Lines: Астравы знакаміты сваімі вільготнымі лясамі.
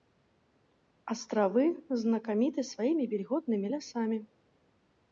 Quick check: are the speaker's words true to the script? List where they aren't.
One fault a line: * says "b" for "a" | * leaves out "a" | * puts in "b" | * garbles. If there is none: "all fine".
all fine